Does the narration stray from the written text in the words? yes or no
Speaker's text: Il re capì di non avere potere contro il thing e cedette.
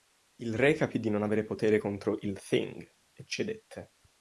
no